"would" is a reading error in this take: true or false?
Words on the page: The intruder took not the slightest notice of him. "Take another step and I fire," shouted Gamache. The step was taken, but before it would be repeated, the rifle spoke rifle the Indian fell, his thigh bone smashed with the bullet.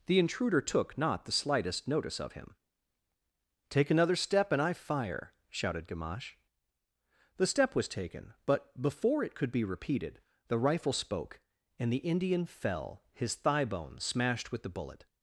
true